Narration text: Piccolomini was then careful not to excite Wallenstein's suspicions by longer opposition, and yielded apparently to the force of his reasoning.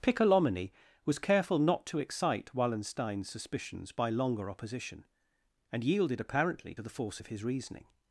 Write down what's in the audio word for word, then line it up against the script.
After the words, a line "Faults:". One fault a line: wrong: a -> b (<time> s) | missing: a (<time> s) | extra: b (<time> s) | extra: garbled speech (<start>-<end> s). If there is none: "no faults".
Piccolomini was careful not to excite Wallenstein's suspicions by longer opposition, and yielded apparently to the force of his reasoning.
Faults:
missing: then (1.2 s)